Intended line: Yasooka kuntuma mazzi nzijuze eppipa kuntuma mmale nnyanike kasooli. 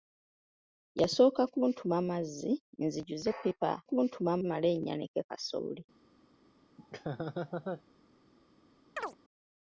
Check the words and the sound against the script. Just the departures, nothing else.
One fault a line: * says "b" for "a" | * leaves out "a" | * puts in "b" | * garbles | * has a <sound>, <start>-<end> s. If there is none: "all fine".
* has a laugh, 6.8-7.8 s
* has a chirp, 9.0-9.2 s